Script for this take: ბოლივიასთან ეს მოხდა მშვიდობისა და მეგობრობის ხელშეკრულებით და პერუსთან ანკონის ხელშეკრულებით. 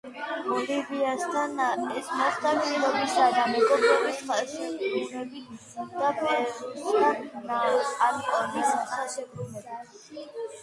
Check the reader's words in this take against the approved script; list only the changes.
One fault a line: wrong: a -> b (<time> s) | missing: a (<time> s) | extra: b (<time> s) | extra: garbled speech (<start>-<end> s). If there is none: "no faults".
no faults